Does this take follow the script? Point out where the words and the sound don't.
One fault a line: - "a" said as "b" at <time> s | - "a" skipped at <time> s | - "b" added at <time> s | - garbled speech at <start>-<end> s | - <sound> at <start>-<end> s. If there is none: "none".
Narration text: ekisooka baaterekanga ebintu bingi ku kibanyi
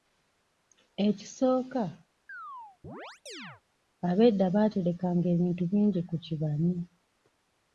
- chirp at 2.3-3.6 s
- "abedda" added at 4.1 s